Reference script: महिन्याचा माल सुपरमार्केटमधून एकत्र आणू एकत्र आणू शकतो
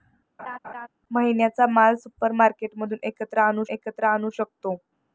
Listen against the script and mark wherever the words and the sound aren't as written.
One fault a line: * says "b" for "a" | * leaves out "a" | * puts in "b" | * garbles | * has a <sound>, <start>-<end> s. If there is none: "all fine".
* has a laugh, 0.4-0.9 s